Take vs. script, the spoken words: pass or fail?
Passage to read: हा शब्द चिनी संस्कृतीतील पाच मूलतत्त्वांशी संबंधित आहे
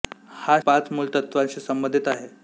fail